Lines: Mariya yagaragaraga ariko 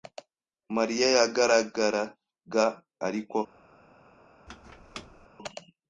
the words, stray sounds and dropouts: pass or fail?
fail